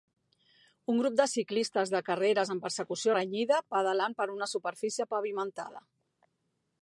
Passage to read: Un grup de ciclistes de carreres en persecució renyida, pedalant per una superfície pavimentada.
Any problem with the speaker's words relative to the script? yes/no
no